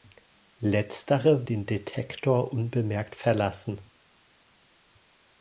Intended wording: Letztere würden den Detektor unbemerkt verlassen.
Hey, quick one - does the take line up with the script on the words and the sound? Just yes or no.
no